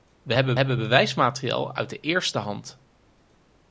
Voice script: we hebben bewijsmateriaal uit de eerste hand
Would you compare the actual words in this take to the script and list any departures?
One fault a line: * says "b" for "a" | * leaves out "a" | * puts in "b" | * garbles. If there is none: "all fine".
* puts in "hebben"